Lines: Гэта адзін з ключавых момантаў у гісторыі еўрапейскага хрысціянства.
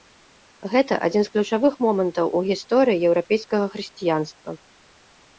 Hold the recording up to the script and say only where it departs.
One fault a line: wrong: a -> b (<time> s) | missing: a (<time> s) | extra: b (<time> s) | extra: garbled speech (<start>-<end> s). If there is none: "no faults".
no faults